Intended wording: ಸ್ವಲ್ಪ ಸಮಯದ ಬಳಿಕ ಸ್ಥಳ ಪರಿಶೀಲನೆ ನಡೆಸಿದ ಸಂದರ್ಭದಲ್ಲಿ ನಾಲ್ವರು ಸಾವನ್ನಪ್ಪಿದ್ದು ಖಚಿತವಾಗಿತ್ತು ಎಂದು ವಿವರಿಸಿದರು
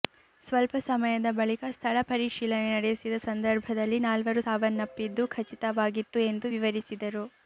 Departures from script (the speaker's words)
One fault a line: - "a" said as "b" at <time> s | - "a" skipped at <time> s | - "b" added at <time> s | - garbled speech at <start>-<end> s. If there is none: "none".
none